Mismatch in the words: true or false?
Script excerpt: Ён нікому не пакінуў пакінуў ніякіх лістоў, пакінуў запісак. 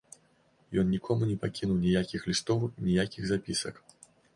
true